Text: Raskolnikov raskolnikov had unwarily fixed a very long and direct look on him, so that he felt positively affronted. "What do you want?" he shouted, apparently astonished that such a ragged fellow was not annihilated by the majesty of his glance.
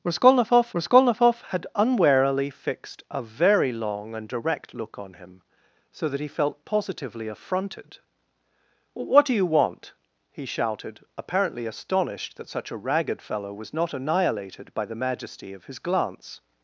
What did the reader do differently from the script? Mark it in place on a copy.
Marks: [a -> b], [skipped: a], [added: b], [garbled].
Raskolnikov raskolnikov had unwarily fixed a very long and direct look on him, so that he felt positively affronted. "What do you want?" he shouted, apparently astonished that such a ragged fellow was not annihilated by the majesty of his glance.